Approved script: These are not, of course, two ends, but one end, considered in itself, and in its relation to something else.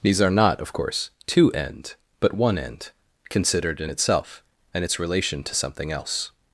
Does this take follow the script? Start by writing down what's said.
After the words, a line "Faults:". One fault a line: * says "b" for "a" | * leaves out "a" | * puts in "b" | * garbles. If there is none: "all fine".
These are not, of course, two end, but one end, considered in itself, and its relation to something else.
Faults:
* says "end" for "ends"
* leaves out "in"